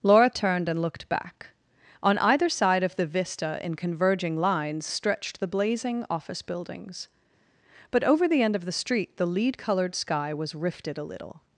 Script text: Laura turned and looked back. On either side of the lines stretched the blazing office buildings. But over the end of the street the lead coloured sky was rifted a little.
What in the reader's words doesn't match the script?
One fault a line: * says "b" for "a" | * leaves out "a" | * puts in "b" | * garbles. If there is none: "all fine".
* puts in "vista in converging"